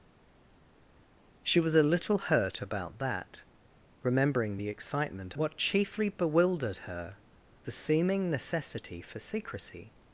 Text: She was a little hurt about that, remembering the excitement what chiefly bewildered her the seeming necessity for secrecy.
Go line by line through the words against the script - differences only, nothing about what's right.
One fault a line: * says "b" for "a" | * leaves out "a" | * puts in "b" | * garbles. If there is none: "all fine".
all fine